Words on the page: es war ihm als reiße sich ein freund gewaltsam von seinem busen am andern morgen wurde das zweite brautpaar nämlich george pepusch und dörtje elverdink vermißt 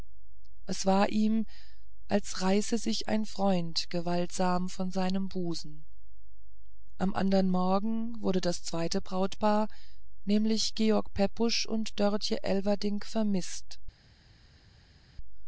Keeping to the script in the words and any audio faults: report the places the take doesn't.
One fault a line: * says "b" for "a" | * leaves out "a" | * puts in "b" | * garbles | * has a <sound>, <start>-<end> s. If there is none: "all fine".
all fine